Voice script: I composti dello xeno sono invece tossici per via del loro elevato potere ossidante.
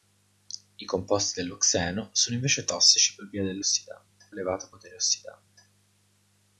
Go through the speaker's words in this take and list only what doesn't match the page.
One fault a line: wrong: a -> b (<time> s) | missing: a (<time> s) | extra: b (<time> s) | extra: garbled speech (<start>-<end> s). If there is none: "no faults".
wrong: loro -> ossidante (3.6 s)